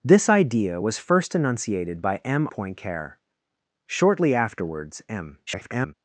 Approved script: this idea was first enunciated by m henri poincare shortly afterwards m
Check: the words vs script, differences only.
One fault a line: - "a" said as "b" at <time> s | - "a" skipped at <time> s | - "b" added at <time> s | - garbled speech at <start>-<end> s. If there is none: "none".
- "henri" skipped at 2.5 s
- garbled speech at 5.5-5.9 s